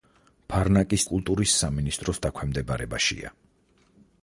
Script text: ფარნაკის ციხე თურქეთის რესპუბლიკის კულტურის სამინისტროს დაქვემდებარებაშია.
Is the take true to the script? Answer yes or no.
no